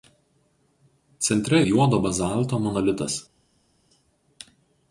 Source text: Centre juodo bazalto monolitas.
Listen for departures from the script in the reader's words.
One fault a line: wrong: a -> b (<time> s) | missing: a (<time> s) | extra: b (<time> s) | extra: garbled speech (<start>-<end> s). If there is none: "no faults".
no faults